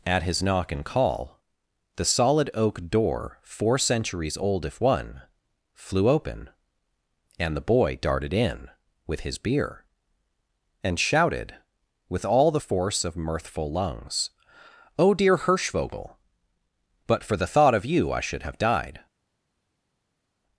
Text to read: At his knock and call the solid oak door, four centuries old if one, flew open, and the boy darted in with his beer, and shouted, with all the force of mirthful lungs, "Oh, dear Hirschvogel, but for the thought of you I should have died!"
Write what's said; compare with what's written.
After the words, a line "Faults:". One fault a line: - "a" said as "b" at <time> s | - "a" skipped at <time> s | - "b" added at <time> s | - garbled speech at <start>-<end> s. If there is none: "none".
At his knock and call the solid oak door, four centuries old if one, flew open, and the boy darted in with his beer, and shouted, with all the force of mirthful lungs, "Oh, dear Hirschvogel, but for the thought of you I should have died!"
Faults:
none